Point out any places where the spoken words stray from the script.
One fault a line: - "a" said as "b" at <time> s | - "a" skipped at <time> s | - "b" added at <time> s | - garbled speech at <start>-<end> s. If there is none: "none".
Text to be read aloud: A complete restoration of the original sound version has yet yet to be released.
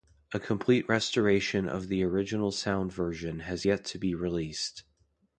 - "yet" skipped at 3.8 s